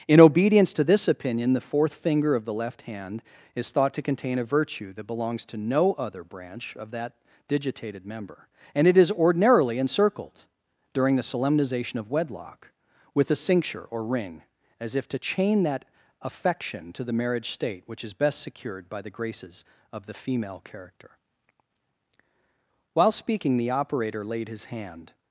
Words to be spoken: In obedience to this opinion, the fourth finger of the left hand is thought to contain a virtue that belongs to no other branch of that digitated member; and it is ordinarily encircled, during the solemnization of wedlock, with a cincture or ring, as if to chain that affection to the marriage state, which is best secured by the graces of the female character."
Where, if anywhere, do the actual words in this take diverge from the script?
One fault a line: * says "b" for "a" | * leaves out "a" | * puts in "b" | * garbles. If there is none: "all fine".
* puts in "While speaking the operator laid his hand"